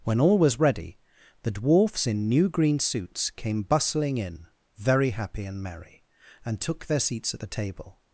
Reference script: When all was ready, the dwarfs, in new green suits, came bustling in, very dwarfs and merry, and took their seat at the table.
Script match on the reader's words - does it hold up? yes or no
no